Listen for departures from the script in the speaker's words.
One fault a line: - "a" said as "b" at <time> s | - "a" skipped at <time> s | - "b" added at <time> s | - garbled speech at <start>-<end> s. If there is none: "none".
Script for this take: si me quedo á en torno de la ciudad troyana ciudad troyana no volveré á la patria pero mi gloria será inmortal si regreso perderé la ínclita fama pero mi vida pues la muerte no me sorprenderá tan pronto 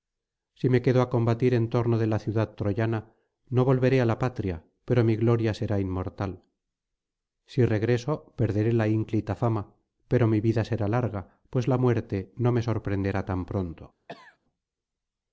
- "combatir" added at 1.1 s
- "ciudad troyana" skipped at 3.0 s
- "será larga" added at 10.7 s